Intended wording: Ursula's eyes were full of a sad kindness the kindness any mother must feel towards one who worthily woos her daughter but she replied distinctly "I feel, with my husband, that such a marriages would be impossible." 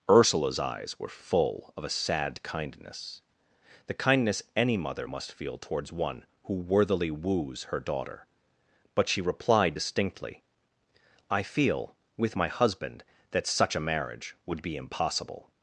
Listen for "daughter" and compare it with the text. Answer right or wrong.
right